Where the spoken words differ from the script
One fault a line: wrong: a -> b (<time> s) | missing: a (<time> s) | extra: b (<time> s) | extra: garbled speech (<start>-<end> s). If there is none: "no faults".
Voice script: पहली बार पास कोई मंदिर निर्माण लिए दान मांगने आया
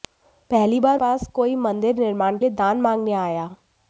no faults